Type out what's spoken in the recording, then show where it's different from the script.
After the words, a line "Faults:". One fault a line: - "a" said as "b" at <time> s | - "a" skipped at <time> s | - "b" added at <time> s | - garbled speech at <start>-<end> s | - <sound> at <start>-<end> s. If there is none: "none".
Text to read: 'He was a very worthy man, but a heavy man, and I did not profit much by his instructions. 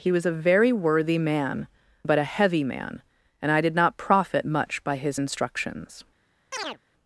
'He was a very worthy man, but a heavy man, and I did not profit much by his instructions.
Faults:
- chirp at 6.5-6.8 s